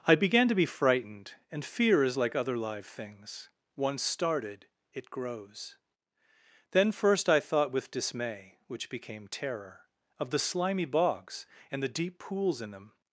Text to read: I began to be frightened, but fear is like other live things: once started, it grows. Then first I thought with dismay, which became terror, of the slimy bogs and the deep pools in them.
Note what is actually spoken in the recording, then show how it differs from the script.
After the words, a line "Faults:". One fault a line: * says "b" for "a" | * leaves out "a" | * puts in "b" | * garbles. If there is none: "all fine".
I began to be frightened, and fear is like other live things: once started, it grows. Then first I thought with dismay, which became terror, of the slimy bogs and the deep pools in them.
Faults:
* says "and" for "but"